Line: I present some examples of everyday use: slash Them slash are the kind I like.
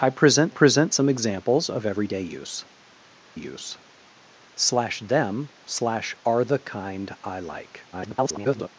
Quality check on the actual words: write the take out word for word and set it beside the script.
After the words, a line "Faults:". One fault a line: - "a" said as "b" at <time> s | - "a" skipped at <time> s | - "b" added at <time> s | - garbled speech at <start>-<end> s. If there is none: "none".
I present present some examples of everyday use use: slash Them slash are the kind I like. [garbled]
Faults:
- "present" added at 0.5 s
- "use" added at 3.3 s
- garbled speech at 7.9-8.7 s